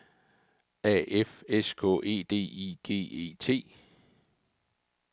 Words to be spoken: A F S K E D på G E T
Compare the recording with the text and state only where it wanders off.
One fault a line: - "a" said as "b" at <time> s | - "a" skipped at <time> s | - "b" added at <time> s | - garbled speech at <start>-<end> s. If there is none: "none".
- "på" said as "I" at 2.4 s